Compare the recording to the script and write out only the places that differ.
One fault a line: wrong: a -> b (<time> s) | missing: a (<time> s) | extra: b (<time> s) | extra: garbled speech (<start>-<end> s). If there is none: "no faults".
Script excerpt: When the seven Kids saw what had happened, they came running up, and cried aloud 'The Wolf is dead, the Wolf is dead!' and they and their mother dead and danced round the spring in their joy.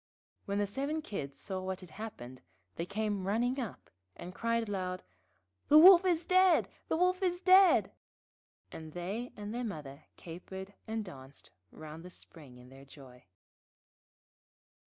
wrong: dead -> capered (10.2 s)